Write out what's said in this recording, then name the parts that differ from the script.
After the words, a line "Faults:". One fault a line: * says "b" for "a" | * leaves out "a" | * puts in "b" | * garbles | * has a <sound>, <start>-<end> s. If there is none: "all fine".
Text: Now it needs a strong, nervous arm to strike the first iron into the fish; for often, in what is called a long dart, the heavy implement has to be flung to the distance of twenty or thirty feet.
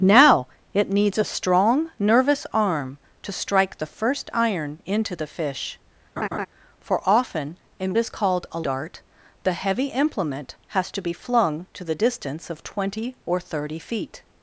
Now it needs a strong, nervous arm to strike the first iron into the fish; for often, in is called a dart, the heavy implement has to be flung to the distance of twenty or thirty feet.
Faults:
* has a laugh, 6.2-6.5 s
* leaves out "what"
* leaves out "long"